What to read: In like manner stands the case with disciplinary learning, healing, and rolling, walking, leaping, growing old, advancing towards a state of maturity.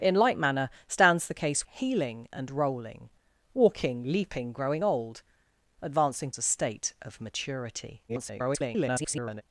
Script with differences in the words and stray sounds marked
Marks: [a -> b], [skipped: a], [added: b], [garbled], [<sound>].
In like manner stands the case [skipped: with disciplinary learning,] healing, and rolling, walking, leaping, growing old, advancing [skipped: towards] a state of maturity. [garbled]